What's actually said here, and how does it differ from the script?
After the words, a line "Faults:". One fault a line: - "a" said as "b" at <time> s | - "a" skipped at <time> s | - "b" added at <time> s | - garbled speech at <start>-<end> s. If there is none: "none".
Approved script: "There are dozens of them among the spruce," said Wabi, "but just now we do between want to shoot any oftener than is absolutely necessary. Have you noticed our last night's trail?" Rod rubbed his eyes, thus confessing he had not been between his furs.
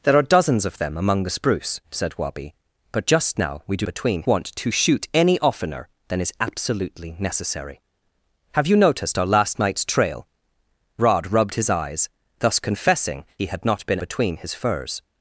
"There are dozens of them among the spruce," said Wabi, "but just now we do between want to shoot any oftener than is absolutely necessary. Have you noticed our last night's trail?" Rod rubbed his eyes, thus confessing he had not been between his furs.
Faults:
none